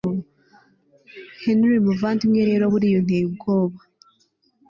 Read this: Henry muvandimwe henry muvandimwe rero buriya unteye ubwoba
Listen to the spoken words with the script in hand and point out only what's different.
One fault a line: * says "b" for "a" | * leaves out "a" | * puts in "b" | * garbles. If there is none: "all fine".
* leaves out "henry muvandimwe"